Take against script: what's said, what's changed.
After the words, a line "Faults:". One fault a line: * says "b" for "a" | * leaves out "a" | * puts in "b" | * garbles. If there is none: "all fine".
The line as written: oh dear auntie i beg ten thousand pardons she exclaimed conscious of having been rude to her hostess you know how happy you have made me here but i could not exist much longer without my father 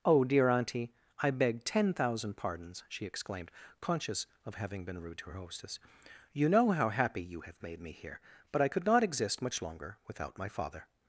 oh dear auntie i beg ten thousand pardons she exclaimed conscious of having been rude to her hostess you know how happy you have made me here but i could not exist much longer without my father
Faults:
all fine